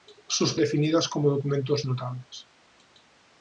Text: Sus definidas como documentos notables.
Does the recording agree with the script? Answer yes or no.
yes